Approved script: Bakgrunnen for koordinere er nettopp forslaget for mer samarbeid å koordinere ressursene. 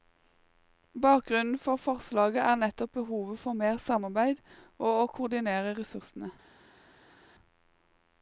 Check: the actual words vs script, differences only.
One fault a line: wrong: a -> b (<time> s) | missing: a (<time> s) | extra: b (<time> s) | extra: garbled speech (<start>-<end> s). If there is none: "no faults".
wrong: koordinere -> forslaget (1.8 s)
wrong: forslaget -> behovet (3.0 s)
extra: og (4.8 s)